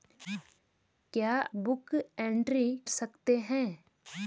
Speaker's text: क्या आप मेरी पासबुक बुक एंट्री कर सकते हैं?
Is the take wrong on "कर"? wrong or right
wrong